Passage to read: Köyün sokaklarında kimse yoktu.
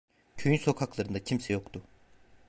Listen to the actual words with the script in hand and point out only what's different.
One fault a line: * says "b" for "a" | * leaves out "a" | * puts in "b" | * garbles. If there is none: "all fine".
all fine